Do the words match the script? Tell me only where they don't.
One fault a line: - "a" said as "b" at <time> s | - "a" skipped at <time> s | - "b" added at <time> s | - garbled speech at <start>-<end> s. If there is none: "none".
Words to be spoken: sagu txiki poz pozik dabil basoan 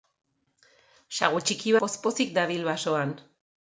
none